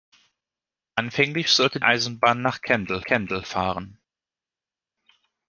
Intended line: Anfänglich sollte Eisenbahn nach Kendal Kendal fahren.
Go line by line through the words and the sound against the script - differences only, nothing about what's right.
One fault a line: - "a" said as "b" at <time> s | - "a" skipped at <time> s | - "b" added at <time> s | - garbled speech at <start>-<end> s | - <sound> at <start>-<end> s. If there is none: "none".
none